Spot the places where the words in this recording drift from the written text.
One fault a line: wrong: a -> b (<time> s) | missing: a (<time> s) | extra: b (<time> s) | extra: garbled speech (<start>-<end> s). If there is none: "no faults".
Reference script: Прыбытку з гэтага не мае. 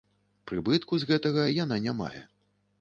extra: яна (1.6 s)